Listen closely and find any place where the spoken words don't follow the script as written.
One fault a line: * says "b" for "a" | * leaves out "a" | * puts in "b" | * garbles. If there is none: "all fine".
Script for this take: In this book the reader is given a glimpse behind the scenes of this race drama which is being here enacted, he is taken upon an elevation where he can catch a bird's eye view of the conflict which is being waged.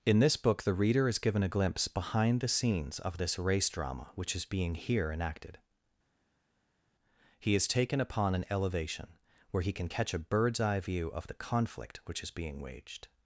all fine